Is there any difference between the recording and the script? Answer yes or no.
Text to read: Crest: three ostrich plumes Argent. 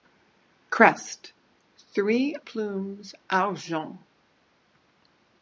yes